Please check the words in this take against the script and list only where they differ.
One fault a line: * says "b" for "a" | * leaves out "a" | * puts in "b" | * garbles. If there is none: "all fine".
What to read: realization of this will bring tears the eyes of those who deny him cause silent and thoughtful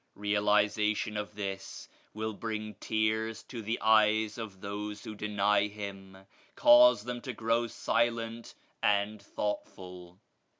* puts in "to"
* puts in "them to grow"